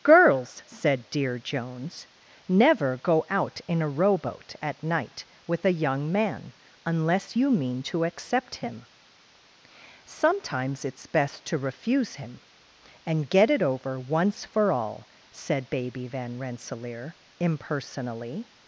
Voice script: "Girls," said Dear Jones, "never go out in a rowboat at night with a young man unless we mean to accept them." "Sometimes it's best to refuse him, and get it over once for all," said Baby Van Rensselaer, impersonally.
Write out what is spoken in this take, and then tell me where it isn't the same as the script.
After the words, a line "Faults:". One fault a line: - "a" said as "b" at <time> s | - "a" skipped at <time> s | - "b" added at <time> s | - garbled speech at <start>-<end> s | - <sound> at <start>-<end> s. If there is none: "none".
"Girls," said Dear Jones, "never go out in a rowboat at night with a young man unless you mean to accept him." "Sometimes it's best to refuse him, and get it over once for all," said Baby Van Rensselaer, impersonally.
Faults:
- "we" said as "you" at 7.3 s
- "them" said as "him" at 8.6 s